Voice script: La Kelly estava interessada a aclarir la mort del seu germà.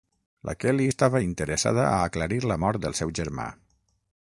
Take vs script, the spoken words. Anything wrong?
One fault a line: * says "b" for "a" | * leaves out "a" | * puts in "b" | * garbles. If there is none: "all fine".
all fine